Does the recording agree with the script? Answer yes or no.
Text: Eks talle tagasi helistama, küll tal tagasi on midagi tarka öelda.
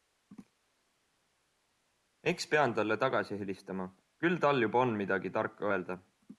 no